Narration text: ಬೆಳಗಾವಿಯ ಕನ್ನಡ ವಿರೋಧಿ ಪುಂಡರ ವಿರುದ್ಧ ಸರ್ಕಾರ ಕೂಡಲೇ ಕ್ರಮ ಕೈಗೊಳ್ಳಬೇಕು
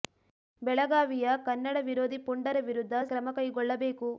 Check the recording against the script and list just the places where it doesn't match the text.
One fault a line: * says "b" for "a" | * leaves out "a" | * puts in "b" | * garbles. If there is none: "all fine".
* leaves out "ಸರ್ಕಾರ ಕೂಡಲೇ"